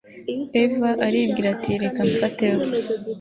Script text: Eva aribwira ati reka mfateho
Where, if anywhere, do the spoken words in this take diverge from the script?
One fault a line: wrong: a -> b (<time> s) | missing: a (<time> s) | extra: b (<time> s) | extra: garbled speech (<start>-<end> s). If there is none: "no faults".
no faults